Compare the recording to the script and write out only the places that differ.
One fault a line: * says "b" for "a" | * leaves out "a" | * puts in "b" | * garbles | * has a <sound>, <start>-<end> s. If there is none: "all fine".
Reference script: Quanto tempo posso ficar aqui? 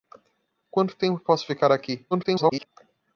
* garbles